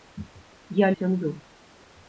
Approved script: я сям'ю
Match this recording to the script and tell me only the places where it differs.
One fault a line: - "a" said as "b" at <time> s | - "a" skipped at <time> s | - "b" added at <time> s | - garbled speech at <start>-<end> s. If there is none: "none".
none